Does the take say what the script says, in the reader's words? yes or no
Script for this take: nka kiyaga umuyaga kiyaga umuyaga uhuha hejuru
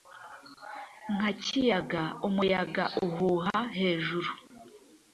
no